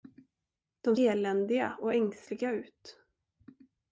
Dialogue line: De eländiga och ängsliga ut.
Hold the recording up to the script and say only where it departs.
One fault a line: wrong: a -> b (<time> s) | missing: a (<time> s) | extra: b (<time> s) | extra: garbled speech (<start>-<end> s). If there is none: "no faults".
no faults